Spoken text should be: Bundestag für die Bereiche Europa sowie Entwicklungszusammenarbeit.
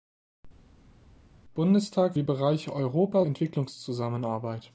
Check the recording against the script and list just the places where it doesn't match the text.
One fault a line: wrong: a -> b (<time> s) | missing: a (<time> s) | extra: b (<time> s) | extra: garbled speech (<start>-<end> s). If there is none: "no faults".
missing: für (2.1 s)
missing: sowie (3.2 s)